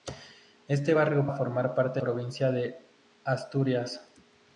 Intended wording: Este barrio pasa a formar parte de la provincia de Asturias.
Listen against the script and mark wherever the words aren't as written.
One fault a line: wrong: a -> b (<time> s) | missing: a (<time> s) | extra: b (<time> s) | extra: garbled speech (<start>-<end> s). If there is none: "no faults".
missing: pasa (1.3 s)
missing: de la (2.0 s)